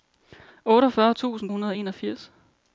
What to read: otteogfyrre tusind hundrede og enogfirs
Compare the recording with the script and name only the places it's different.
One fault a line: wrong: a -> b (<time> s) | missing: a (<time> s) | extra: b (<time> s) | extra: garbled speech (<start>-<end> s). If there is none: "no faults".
no faults